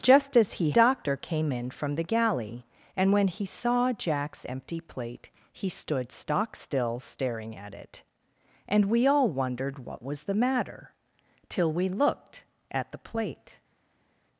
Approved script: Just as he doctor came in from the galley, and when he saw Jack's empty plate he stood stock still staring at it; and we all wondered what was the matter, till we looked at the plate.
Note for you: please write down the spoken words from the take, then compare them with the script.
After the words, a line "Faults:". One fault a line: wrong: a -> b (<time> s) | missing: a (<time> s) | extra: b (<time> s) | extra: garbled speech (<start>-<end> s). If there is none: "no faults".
Just as he doctor came in from the galley, and when he saw Jack's empty plate he stood stock still staring at it; and we all wondered what was the matter, till we looked at the plate.
Faults:
no faults